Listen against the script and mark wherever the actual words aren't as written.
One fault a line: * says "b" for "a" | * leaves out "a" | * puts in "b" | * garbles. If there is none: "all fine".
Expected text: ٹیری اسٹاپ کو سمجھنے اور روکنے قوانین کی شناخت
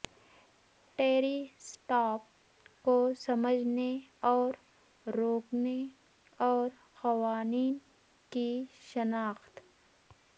* puts in "اور"